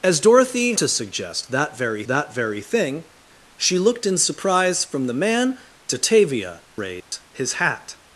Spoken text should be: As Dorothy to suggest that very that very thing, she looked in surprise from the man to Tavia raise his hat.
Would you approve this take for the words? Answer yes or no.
yes